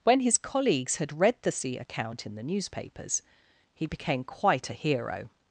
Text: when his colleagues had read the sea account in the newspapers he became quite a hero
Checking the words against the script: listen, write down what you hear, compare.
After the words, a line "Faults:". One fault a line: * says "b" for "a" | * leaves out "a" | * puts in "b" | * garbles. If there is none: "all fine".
when his colleagues had read the sea account in the newspapers he became quite a hero
Faults:
all fine